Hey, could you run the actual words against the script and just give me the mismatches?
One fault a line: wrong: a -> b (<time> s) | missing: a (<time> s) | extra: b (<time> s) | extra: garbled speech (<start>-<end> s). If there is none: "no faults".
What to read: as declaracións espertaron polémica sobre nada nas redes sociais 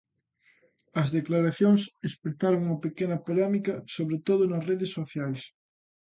extra: unha pequena (2.7 s)
wrong: nada -> todo (4.3 s)